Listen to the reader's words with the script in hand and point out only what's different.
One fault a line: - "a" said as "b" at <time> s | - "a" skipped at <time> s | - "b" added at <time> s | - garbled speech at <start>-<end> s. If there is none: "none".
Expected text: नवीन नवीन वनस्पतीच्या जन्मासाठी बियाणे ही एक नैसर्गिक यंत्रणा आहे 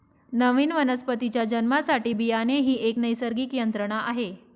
- "नवीन" skipped at 0.7 s